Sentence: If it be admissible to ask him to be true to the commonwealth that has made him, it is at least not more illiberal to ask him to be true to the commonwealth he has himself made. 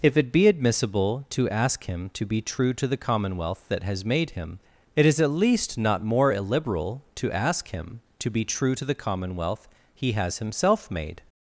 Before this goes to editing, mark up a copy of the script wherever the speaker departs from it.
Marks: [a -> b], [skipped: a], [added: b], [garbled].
If it be admissible to ask him to be true to the commonwealth that has made him, it is at least not more illiberal to ask him to be true to the commonwealth he has himself made.